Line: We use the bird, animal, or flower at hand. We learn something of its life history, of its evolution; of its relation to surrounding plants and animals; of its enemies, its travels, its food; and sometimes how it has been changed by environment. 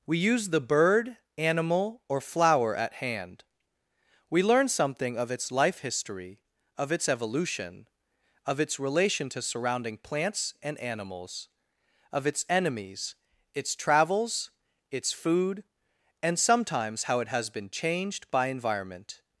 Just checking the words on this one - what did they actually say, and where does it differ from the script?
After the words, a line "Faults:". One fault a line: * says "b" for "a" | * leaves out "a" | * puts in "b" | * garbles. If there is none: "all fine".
We use the bird, animal, or flower at hand. We learn something of its life history, of its evolution; of its relation to surrounding plants and animals; of its enemies, its travels, its food; and sometimes how it has been changed by environment.
Faults:
all fine